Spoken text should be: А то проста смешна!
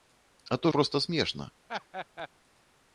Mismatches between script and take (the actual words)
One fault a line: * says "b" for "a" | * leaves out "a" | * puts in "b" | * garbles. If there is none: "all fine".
all fine